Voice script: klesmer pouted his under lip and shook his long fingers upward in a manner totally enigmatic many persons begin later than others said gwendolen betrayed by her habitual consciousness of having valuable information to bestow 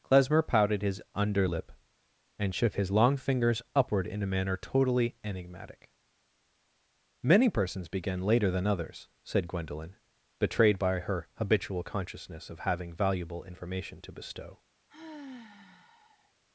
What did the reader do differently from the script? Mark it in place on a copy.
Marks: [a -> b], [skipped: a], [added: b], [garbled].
klesmer pouted his under lip and shook his long fingers upward in a manner totally enigmatic many persons begin later than others said gwendolen betrayed by her habitual consciousness of having valuable information to bestow